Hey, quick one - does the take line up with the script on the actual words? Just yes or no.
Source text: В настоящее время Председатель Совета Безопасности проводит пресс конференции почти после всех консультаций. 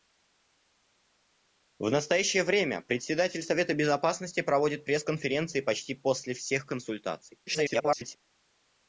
no